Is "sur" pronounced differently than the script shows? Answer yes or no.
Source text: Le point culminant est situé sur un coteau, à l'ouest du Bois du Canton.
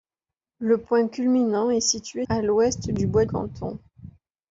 yes